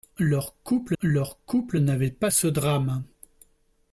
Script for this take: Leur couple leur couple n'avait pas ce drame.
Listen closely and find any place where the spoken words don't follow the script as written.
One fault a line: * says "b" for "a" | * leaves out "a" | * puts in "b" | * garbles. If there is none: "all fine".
all fine